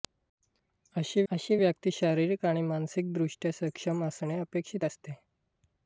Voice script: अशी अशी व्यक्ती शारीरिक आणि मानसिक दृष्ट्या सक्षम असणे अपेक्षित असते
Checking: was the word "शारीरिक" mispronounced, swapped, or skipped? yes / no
no